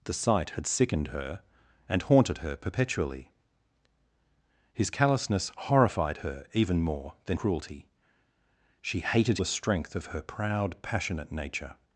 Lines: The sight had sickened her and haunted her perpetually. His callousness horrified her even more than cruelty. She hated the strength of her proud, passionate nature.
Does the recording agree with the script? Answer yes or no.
yes